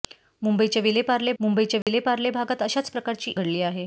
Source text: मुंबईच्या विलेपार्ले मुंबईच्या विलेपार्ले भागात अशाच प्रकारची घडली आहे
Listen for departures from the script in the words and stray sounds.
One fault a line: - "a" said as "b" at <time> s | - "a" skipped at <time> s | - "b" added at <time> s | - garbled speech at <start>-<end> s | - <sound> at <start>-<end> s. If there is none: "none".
- dropout at 1.8-1.9 s